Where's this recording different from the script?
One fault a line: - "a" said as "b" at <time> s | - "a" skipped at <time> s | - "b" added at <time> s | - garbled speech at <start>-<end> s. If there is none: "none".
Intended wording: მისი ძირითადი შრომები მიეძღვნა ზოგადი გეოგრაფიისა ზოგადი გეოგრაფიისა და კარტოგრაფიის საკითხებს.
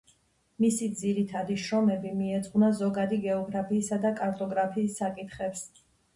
- "ზოგადი გეოგრაფიისა" skipped at 4.0 s